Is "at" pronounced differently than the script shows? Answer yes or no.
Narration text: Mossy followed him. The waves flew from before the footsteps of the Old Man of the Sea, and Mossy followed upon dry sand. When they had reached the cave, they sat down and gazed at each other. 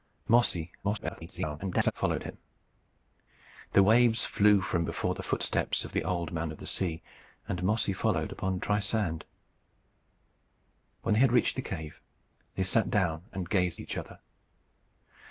yes